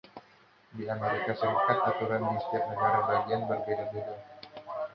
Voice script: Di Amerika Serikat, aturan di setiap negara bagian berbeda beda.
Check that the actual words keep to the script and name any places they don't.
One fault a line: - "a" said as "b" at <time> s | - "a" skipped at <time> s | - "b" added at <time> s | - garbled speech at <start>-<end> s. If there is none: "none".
none